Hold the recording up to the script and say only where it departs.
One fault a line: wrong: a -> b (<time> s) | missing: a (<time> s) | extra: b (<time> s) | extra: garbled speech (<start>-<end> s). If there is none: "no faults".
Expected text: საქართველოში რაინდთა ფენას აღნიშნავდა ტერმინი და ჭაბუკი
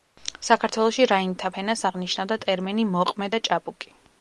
extra: მოყმე (2.9 s)